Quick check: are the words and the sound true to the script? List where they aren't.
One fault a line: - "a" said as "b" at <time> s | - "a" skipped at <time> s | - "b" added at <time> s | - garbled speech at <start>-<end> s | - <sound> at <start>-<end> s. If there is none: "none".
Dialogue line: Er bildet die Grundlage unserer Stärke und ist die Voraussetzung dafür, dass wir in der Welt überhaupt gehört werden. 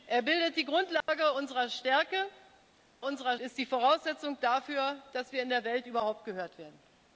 - dropout at 1.0-1.1 s
- "und" said as "unserer" at 3.0 s